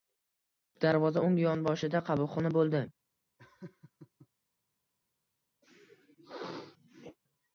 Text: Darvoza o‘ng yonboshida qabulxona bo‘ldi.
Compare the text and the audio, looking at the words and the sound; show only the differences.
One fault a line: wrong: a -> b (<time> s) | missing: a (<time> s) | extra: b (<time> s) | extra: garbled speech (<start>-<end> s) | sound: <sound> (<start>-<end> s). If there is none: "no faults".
sound: laugh (3.4-4.3 s)
sound: sneeze (5.6-7.2 s)